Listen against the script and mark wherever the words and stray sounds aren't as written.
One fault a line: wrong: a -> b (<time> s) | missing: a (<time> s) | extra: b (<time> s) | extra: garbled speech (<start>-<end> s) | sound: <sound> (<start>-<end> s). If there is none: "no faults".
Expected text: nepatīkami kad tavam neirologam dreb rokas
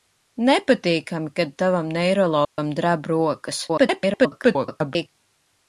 sound: dropout (2.4-2.6 s)
extra: garbled speech (3.7-5.1 s)